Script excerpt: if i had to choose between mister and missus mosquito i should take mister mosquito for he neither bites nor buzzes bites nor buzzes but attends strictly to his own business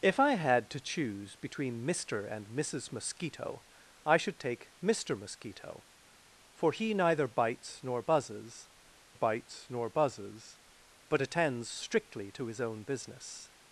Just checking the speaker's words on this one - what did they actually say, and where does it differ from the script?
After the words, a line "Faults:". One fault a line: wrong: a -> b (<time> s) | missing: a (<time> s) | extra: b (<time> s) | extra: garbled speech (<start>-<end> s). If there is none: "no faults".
if i had to choose between mister and missus mosquito i should take mister mosquito for he neither bites nor buzzes bites nor buzzes but attends strictly to his own business
Faults:
no faults